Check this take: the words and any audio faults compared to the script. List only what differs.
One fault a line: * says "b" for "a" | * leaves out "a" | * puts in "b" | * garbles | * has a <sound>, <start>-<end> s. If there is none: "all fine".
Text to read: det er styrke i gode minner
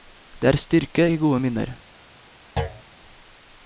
* has a thud, 2.6-2.8 s